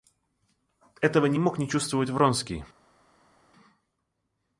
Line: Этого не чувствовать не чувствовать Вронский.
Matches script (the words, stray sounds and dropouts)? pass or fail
fail